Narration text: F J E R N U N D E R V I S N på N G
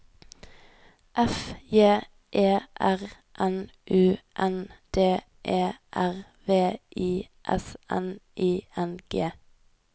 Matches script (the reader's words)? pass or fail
fail